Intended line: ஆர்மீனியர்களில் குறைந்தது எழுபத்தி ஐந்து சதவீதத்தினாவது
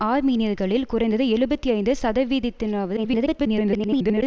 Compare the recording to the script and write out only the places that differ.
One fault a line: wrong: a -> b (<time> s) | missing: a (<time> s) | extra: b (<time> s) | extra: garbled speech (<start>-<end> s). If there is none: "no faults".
extra: garbled speech (3.0-4.2 s)